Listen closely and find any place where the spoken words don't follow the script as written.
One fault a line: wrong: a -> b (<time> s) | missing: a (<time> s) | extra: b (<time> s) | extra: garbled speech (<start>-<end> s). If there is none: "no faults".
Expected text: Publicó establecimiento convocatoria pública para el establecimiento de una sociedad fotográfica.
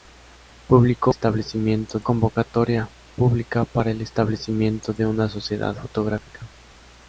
no faults